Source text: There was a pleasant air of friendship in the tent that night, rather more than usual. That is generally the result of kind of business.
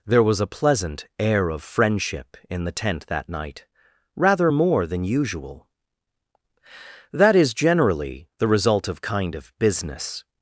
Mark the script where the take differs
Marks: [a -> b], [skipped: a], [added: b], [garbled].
There was a pleasant air of friendship in the tent that night, rather more than usual. That is generally the result of kind of business.